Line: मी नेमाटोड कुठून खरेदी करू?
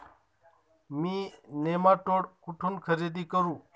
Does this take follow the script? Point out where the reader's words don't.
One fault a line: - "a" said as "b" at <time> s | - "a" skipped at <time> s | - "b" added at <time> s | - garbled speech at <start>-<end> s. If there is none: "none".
none